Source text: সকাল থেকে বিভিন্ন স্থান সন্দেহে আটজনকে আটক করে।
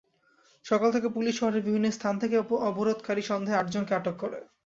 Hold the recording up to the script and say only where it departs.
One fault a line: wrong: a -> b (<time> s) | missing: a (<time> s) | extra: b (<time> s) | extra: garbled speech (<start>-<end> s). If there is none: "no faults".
extra: পুলিশ শহরের (1.1 s)
extra: থেকে অবরোধকারী (2.2 s)